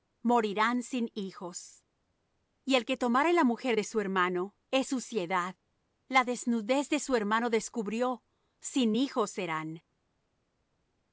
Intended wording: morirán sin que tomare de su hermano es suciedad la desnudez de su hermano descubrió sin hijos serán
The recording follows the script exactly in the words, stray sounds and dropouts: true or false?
false